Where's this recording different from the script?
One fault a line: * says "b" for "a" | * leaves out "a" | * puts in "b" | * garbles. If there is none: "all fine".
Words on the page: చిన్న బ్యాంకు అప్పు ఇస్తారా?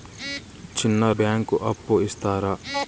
all fine